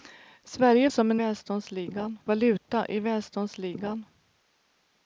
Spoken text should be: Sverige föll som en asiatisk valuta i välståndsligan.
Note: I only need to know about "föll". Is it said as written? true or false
false